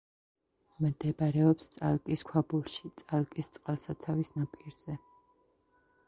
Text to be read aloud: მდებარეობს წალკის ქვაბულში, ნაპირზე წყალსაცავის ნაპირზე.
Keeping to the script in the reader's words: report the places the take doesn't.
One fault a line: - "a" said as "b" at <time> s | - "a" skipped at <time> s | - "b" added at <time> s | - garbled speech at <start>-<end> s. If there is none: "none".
- "ნაპირზე" said as "წალკის" at 3.0 s